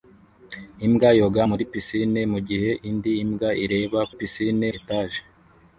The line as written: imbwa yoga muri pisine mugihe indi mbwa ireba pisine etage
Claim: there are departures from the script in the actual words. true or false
false